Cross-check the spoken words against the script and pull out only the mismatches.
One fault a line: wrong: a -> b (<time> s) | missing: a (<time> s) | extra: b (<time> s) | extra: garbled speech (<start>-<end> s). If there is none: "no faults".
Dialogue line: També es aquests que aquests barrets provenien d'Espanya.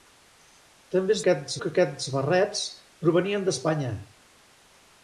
no faults